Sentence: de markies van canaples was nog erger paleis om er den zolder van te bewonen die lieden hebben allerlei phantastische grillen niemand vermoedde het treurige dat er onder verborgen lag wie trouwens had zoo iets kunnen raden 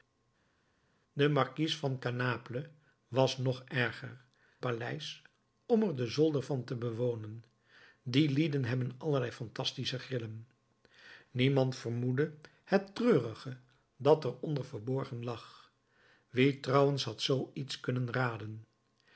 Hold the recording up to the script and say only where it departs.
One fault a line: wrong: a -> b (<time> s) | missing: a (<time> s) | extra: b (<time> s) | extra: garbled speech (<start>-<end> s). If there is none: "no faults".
no faults